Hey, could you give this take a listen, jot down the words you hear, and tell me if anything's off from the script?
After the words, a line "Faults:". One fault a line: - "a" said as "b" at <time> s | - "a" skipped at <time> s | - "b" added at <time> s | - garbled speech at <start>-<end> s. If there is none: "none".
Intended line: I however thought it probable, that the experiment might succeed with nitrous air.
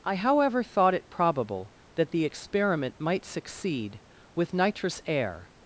I however thought it probable, that the experiment might succeed with nitrous air.
Faults:
none